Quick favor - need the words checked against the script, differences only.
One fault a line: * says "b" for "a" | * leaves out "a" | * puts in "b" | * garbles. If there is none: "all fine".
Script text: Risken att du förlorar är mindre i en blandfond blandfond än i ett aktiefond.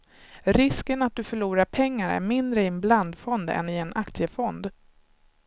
* puts in "pengar"
* leaves out "blandfond"
* says "en" for "ett"